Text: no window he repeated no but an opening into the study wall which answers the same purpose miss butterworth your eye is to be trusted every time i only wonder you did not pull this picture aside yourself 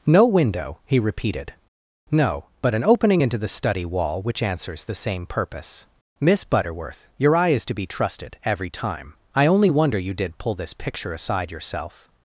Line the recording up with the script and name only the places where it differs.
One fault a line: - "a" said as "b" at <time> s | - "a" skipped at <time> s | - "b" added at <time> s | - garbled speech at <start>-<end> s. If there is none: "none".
- "not" skipped at 10.4 s